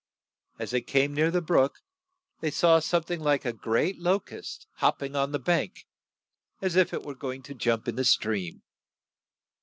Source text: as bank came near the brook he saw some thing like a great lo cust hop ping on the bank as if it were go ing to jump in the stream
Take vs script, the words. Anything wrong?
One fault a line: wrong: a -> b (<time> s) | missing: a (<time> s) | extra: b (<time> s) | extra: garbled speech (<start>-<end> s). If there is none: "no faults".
wrong: bank -> they (0.7 s)
wrong: he -> they (2.4 s)